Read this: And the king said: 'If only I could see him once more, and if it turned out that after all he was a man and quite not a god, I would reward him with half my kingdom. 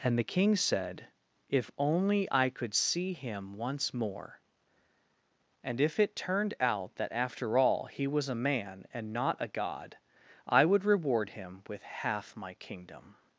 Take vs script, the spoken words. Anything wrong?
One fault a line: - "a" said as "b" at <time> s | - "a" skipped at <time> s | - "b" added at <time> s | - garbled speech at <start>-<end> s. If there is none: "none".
- "quite" skipped at 9.1 s